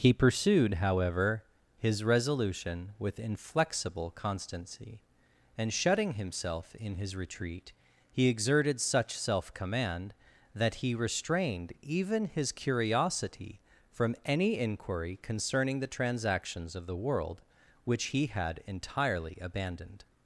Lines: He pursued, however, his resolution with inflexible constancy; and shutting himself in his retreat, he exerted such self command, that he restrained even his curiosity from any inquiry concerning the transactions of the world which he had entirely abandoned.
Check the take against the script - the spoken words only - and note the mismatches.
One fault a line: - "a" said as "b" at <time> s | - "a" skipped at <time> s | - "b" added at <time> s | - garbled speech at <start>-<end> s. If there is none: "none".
none